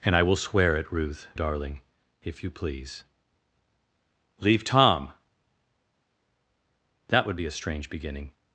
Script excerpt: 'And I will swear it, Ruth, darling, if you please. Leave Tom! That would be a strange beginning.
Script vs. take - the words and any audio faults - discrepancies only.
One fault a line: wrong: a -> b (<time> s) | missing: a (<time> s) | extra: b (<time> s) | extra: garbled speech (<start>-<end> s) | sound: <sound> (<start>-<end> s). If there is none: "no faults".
no faults